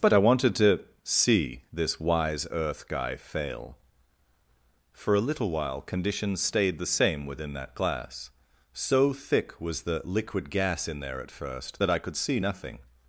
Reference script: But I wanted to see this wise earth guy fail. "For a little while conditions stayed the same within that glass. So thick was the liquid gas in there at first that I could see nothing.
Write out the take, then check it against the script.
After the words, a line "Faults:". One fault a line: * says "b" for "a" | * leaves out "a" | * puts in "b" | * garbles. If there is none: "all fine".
But I wanted to see this wise earth guy fail. "For a little while conditions stayed the same within that glass. So thick was the liquid gas in there at first that I could see nothing.
Faults:
all fine